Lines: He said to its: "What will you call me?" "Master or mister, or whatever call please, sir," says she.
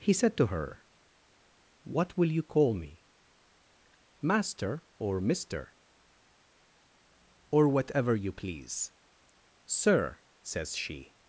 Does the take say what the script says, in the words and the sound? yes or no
no